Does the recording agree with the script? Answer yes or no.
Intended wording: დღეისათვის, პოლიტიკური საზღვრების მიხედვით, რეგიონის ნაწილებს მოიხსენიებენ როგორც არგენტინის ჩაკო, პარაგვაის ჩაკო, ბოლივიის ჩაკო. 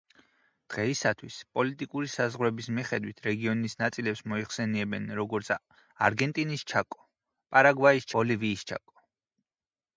no